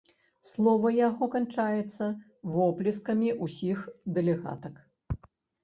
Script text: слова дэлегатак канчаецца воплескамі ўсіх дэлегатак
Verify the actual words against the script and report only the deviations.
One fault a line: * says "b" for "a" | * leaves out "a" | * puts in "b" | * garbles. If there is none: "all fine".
* says "яго" for "дэлегатак"